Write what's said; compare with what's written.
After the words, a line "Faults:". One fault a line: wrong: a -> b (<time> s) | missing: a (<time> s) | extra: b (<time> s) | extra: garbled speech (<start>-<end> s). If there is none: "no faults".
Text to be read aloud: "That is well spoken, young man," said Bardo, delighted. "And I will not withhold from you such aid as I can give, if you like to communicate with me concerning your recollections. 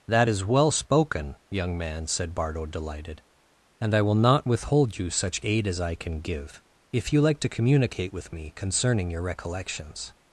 "That is well spoken, young man," said Bardo, delighted. "And I will not withhold you such aid as I can give, if you like to communicate with me concerning your recollections.
Faults:
missing: from (5.0 s)